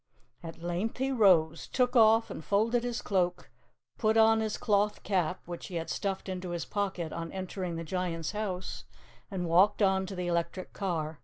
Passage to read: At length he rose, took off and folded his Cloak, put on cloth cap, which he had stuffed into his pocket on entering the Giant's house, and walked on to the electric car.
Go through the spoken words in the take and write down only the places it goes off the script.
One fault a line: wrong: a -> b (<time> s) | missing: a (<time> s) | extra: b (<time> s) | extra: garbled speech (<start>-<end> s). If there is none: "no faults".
extra: his (4.4 s)